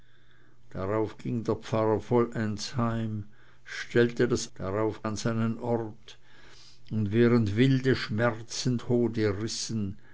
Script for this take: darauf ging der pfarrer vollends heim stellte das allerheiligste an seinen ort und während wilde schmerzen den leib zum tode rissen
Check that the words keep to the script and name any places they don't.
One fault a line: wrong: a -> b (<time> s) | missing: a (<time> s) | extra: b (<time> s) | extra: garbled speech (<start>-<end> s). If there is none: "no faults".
wrong: allerheiligste -> darauf (4.6 s)
missing: den leib zum (8.8 s)